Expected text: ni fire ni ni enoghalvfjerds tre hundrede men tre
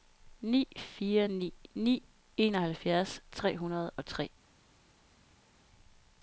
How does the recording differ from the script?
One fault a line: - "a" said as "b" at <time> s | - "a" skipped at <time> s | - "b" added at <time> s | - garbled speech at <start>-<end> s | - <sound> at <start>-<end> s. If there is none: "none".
- "men" said as "og" at 4.0 s